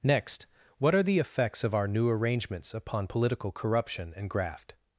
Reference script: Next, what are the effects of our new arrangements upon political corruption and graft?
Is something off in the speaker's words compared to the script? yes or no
no